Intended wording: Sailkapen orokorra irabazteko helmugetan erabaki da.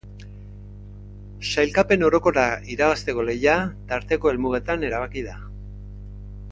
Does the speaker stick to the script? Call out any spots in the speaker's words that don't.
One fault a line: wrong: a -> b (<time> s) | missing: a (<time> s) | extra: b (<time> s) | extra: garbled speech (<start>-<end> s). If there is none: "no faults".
extra: lehia tarteko (3.3 s)